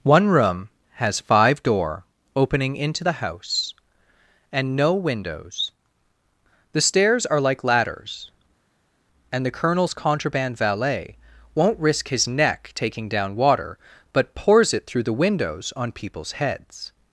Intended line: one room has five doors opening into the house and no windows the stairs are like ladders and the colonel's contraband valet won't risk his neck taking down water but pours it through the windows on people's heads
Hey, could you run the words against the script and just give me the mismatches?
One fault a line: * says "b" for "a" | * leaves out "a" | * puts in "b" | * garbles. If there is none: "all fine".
* says "door" for "doors"